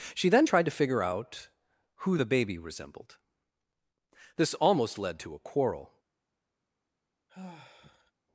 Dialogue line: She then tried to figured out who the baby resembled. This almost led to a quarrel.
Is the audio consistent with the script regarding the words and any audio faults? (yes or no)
no